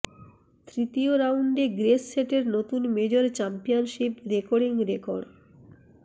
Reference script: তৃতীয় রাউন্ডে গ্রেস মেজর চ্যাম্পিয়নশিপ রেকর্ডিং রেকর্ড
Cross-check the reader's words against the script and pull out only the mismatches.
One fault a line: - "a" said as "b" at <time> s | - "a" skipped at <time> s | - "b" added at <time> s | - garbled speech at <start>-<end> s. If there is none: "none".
- "সেটের নতুন" added at 2.1 s